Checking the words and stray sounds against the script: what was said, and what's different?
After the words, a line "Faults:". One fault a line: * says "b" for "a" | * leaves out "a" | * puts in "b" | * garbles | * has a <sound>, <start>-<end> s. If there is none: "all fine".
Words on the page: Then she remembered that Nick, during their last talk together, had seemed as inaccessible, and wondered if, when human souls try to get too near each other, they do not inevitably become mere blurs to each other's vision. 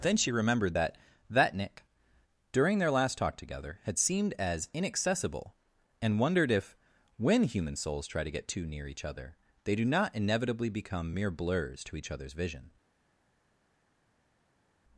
Then she remembered that that Nick, during their last talk together, had seemed as inaccessible, and wondered if, when human souls try to get too near each other, they do not inevitably become mere blurs to each other's vision.
Faults:
* puts in "that"